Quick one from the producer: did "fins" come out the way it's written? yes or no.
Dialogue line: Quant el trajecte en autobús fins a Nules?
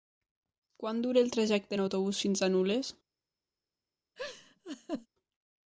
yes